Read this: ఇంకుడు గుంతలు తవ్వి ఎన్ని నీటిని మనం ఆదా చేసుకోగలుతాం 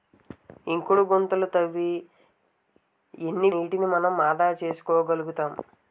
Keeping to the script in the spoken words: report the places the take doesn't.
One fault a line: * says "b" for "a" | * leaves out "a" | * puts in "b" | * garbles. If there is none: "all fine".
all fine